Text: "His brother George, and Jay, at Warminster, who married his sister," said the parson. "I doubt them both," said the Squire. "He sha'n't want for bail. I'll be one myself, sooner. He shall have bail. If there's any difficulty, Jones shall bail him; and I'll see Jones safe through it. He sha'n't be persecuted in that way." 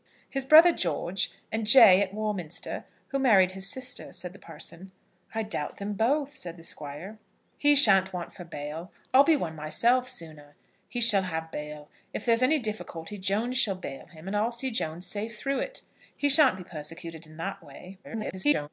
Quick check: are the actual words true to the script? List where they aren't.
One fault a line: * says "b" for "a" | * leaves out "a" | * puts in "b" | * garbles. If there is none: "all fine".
* garbles